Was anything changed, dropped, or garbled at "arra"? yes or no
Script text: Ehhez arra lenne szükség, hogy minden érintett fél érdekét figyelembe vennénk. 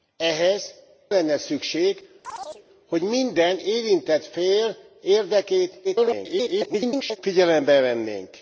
yes